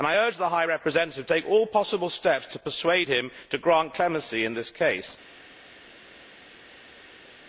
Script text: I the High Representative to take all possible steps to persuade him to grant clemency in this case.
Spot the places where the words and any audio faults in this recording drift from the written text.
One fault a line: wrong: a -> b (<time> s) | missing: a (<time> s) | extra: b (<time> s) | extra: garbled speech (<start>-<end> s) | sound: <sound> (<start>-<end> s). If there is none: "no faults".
extra: urge (0.1 s)